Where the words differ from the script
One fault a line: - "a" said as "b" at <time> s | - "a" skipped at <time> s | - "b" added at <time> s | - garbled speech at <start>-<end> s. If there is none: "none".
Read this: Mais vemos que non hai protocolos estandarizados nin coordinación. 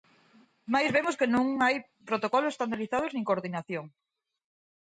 none